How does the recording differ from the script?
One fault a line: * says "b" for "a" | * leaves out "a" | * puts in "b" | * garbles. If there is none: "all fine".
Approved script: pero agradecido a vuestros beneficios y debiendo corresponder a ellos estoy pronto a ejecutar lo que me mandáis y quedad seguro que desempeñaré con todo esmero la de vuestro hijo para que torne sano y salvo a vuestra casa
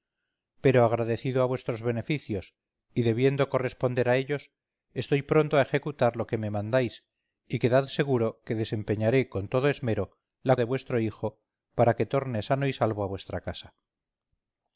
all fine